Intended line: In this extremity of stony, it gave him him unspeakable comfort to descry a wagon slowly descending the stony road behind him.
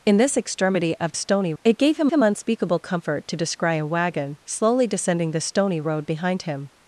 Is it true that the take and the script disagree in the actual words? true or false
false